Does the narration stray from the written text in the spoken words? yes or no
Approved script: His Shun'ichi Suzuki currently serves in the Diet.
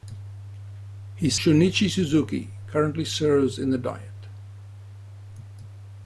no